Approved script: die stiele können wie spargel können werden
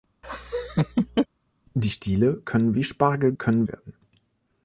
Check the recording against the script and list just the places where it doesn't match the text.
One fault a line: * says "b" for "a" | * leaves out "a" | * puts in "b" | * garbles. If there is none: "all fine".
all fine